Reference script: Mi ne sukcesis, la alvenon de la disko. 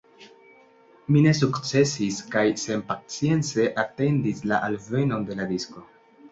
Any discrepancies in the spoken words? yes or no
yes